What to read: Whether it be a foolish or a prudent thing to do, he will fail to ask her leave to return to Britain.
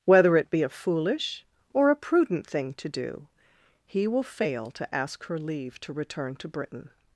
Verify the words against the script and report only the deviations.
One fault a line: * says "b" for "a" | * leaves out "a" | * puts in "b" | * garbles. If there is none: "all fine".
all fine